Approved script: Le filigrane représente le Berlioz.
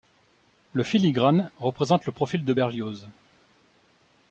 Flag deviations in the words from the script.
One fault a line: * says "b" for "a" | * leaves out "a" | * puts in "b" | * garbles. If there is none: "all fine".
* puts in "profil de"